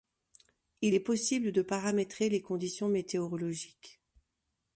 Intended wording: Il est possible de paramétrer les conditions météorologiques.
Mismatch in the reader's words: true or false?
false